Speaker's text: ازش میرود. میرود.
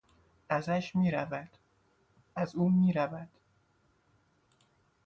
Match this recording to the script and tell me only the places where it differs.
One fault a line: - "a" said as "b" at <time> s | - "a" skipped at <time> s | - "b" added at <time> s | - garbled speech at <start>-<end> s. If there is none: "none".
- "از او" added at 2.4 s